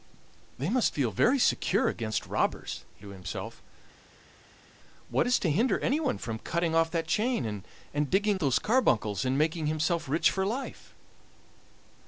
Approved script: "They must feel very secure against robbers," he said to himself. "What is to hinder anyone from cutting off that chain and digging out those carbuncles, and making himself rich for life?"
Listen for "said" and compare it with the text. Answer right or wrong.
wrong